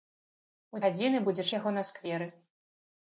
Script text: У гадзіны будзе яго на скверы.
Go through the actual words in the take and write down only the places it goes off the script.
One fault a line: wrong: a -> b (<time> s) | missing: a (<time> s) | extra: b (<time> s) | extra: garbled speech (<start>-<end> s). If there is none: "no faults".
no faults